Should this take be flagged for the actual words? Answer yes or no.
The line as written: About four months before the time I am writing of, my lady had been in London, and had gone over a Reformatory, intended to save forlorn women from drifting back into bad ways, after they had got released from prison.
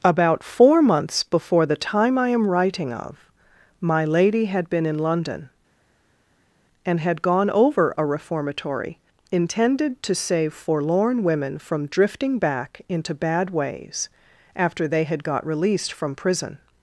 no